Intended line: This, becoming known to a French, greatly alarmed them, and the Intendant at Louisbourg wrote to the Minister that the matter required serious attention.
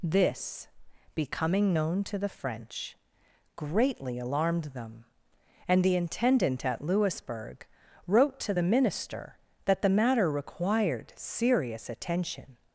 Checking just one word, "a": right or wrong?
wrong